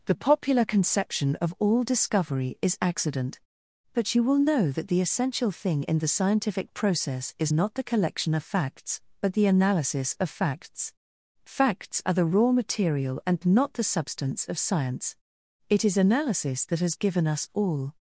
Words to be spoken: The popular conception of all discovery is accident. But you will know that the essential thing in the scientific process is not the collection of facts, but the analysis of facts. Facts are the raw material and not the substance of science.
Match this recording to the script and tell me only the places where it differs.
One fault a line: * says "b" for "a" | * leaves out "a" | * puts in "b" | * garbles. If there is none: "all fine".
* puts in "It is analysis that has given us all"